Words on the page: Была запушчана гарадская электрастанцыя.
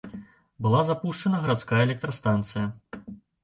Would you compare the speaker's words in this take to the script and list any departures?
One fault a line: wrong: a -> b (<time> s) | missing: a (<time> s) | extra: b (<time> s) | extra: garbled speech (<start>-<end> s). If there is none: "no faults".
no faults